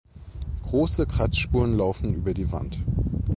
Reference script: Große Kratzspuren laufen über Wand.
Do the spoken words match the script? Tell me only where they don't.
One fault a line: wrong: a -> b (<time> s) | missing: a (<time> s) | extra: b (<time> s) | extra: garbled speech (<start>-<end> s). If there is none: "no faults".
extra: die (2.3 s)